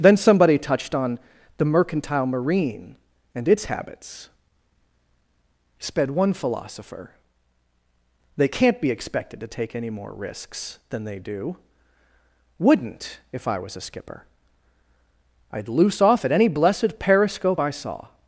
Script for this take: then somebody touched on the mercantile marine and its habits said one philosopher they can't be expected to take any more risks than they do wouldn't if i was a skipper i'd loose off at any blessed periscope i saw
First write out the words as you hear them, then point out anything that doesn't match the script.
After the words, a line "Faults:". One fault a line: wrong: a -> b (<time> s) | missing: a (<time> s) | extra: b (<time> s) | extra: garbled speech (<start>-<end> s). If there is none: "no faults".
then somebody touched on the mercantile marine and its habits sped one philosopher they can't be expected to take any more risks than they do wouldn't if i was a skipper i'd loose off at any blessed periscope i saw
Faults:
wrong: said -> sped (5.8 s)